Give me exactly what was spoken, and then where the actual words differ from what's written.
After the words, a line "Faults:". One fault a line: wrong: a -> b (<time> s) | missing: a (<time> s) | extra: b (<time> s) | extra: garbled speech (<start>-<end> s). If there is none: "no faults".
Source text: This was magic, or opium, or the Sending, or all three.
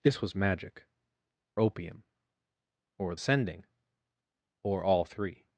This was magic, opium, or Sending, or all three.
Faults:
missing: or (0.9 s)
missing: the (3.1 s)